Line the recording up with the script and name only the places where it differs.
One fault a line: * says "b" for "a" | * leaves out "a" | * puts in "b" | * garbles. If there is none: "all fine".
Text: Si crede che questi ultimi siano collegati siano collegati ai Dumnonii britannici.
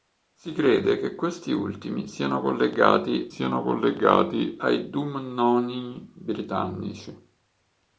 all fine